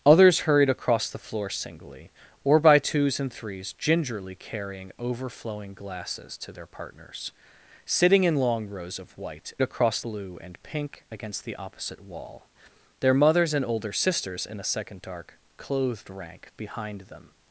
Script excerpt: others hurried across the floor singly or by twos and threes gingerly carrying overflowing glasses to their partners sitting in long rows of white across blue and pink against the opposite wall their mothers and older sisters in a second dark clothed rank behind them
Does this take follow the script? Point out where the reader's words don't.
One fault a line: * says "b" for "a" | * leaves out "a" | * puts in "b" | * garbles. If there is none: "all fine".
all fine